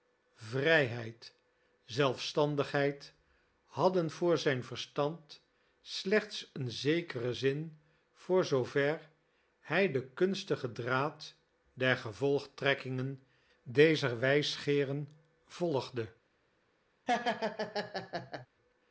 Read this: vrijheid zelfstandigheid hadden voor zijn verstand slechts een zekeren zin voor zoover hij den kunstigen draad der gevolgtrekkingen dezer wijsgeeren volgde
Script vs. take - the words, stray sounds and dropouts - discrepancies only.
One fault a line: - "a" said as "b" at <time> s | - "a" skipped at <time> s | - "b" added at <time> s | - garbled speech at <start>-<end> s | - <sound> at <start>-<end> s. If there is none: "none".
- laugh at 17.1-18.5 s